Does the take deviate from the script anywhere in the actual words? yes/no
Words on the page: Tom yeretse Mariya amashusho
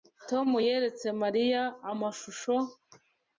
no